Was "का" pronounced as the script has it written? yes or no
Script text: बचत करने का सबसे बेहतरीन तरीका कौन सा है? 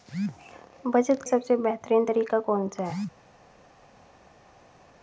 no